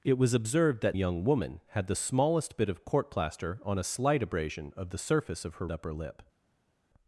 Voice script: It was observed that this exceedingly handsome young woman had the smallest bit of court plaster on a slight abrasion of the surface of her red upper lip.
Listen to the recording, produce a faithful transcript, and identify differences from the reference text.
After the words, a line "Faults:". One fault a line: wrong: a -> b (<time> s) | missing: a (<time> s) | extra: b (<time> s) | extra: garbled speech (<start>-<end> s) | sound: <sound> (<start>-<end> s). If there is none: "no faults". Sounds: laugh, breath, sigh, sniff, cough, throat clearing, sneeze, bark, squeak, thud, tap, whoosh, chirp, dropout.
It was observed that young woman had the smallest bit of court plaster on a slight abrasion of the surface of her upper lip.
Faults:
missing: this exceedingly handsome (1.0 s)
missing: red (5.7 s)